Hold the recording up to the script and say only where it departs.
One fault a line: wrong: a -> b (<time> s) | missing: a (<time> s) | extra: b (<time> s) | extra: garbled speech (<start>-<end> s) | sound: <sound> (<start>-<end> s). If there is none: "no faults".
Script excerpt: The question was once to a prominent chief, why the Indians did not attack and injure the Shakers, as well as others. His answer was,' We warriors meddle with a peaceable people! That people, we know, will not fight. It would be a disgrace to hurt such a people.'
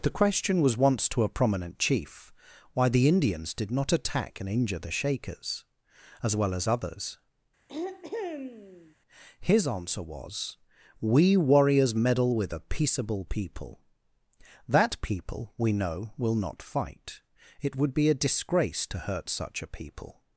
sound: throat clearing (7.7-9.0 s)